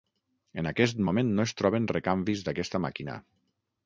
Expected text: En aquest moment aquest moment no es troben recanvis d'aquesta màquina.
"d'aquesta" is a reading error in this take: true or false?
false